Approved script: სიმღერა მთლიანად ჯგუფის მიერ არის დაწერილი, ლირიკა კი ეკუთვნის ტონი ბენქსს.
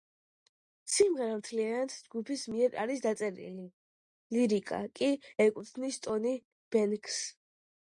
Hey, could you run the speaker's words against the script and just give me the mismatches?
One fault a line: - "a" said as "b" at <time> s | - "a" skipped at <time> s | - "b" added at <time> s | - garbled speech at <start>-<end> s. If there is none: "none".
none